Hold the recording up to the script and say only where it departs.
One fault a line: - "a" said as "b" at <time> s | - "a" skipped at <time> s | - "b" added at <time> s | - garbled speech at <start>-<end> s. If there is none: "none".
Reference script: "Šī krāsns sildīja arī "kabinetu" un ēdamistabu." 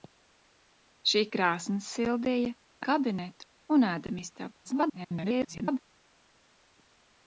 - "arī" skipped at 2.5 s
- garbled speech at 4.6-5.8 s